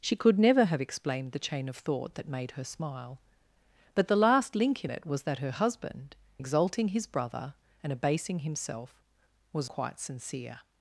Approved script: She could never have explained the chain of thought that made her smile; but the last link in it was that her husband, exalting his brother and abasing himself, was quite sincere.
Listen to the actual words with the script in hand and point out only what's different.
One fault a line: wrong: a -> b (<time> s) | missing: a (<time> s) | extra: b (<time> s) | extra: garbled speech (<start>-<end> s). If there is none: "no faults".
no faults